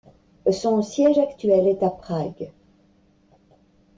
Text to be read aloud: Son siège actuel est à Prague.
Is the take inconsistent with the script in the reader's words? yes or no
no